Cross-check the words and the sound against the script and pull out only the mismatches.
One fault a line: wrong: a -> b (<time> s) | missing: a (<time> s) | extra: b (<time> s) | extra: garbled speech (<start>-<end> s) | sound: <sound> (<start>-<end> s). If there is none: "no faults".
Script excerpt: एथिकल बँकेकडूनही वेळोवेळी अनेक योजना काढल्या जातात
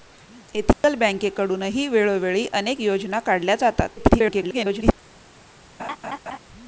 sound: dropout (0.7-0.8 s)
extra: garbled speech (4.0-4.9 s)
sound: laugh (5.8-6.4 s)